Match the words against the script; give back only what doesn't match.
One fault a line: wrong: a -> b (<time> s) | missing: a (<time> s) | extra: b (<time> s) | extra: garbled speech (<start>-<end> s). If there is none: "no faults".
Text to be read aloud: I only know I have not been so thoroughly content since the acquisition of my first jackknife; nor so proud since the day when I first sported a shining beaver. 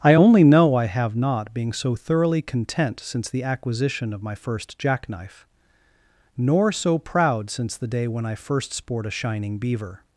wrong: been -> being (1.5 s)
wrong: sported -> sport (8.7 s)